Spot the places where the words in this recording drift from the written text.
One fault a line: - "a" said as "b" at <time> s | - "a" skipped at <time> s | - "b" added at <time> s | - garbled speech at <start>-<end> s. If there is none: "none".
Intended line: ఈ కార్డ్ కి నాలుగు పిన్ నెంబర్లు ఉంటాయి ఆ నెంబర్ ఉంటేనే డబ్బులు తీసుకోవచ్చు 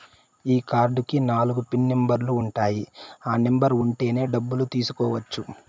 none